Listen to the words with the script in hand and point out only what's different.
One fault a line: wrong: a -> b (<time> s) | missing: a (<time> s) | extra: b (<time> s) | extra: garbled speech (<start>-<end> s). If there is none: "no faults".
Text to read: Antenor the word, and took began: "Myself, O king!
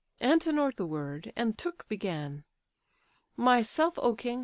no faults